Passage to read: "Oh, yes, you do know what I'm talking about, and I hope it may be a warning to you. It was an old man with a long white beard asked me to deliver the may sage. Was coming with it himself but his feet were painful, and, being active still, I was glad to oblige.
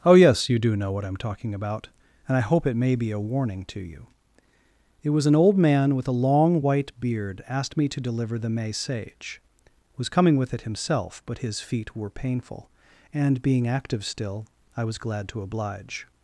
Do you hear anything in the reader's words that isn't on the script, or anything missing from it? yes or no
no